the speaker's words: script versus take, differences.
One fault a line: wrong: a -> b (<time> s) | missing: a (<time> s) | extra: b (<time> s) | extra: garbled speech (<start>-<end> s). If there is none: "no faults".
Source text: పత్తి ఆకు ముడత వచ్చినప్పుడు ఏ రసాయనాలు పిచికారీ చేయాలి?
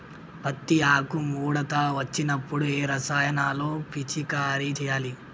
no faults